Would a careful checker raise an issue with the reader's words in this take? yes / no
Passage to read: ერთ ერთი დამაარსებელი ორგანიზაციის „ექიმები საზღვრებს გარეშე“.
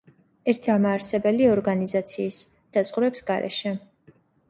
yes